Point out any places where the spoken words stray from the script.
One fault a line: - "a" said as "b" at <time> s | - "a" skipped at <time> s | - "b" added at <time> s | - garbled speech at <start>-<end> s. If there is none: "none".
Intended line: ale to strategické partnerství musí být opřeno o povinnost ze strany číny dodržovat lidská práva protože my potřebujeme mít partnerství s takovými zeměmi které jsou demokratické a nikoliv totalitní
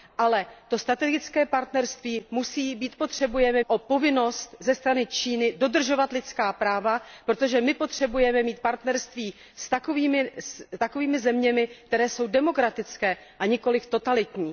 - "opřeno" said as "potřebujeme" at 2.9 s